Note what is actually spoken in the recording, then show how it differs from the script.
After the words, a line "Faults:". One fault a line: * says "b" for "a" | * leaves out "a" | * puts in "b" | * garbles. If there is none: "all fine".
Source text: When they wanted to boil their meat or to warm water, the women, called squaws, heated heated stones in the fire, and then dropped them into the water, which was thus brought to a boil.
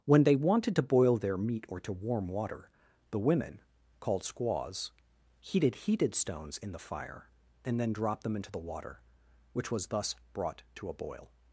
When they wanted to boil their meat or to warm water, the women, called squaws, heated heated stones in the fire, and then dropped them into the water, which was thus brought to a boil.
Faults:
all fine